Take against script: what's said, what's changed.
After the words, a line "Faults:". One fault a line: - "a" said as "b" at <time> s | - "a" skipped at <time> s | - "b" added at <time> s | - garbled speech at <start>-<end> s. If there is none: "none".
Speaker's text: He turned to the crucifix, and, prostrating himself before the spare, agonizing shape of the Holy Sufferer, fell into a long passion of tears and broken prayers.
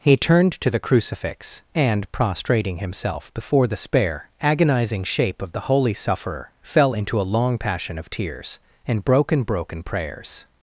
He turned to the crucifix, and, prostrating himself before the spare, agonizing shape of the Holy Sufferer, fell into a long passion of tears and broken broken prayers.
Faults:
- "broken" added at 9.4 s